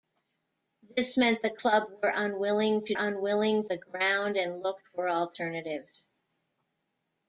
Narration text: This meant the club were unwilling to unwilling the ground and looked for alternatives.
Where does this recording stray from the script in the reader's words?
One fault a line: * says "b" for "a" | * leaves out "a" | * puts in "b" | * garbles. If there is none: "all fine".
all fine